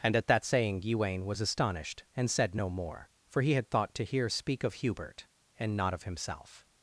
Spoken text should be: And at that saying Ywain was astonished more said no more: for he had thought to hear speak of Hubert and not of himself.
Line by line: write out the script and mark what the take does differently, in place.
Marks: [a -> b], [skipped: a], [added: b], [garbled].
And at that saying Ywain was astonished [more -> and] said no more: for he had thought to hear speak of Hubert and not of himself.